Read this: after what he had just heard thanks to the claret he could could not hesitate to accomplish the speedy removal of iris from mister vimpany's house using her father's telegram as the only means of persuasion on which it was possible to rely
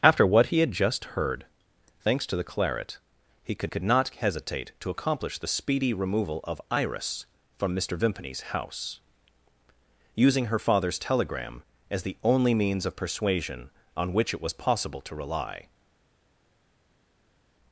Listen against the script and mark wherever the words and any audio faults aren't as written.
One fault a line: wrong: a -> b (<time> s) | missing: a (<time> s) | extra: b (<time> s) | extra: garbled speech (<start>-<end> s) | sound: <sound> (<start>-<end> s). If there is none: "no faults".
no faults